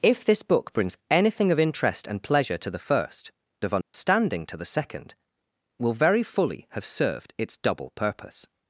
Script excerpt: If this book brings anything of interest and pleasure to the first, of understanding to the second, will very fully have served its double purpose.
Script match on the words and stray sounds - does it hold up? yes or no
no